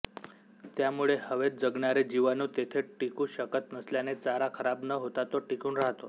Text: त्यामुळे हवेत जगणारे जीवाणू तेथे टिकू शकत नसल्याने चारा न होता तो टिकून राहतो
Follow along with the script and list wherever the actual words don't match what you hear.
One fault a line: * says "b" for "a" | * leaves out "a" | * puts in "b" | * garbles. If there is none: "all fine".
* puts in "खराब"